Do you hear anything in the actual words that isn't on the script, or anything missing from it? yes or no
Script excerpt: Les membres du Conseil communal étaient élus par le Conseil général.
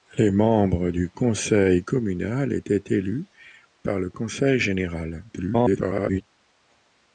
yes